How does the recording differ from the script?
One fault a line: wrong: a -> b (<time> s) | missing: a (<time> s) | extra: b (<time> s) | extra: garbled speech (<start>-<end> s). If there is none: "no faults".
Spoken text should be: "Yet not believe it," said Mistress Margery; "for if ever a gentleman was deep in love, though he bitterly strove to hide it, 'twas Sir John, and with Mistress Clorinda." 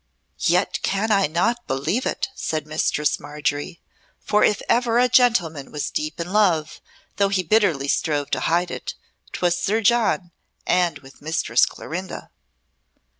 extra: can I (0.8 s)